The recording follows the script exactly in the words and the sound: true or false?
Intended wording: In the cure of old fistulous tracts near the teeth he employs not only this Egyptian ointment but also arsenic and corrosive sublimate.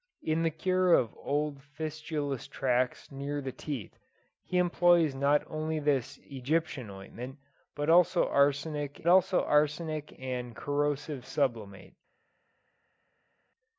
false